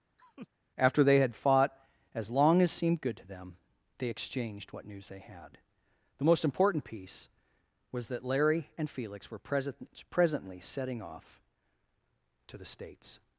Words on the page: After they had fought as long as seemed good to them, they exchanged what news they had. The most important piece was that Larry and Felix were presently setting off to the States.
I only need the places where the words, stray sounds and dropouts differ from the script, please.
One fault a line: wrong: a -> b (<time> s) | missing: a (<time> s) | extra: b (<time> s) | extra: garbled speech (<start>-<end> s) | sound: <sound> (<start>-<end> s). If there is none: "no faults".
sound: laugh (0.2-0.5 s)
extra: present (9.4 s)